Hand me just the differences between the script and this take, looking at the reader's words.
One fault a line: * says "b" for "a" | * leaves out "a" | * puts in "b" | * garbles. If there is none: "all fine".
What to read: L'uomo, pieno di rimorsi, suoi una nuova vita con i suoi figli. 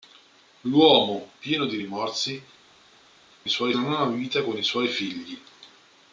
all fine